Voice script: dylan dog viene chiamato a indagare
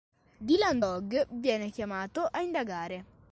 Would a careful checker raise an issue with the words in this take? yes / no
no